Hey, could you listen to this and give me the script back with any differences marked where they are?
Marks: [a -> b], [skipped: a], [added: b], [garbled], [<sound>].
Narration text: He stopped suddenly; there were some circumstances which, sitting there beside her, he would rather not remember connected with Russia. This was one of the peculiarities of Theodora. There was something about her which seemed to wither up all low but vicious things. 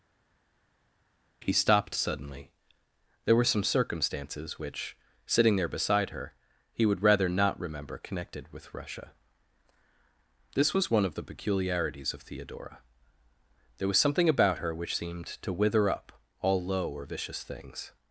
He stopped suddenly; there were some circumstances which, sitting there beside her, he would rather not remember connected with Russia. This was one of the peculiarities of Theodora. There was something about her which seemed to wither up all low [but -> or] vicious things.